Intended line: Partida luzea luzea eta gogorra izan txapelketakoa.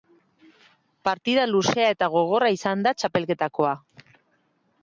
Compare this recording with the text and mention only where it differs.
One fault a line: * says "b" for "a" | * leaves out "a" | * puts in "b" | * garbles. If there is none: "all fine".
* leaves out "luzea"
* puts in "da"